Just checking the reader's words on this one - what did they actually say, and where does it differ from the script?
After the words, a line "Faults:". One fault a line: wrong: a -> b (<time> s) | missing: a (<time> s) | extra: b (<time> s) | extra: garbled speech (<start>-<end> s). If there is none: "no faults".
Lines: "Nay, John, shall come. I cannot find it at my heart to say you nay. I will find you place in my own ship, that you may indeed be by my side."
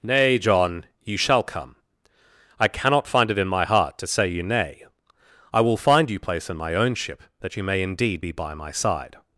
"Nay, John, you shall come. I cannot find it in my heart to say you nay. I will find you place in my own ship, that you may indeed be by my side."
Faults:
extra: you (1.0 s)
wrong: at -> in (3.4 s)